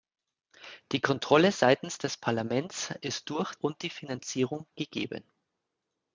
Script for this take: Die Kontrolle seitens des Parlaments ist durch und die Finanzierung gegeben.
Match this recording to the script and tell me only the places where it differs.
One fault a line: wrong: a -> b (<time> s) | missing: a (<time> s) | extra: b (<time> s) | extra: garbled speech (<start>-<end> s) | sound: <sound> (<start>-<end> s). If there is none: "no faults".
no faults